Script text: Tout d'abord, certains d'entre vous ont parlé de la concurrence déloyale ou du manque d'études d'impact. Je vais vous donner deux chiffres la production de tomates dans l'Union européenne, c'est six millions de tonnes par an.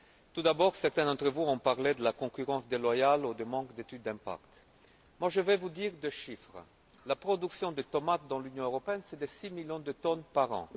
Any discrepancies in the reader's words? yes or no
no